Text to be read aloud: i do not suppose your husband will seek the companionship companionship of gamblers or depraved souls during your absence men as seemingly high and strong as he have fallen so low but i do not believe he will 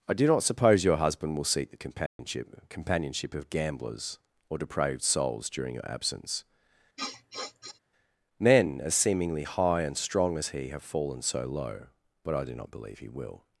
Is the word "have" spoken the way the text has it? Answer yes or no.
yes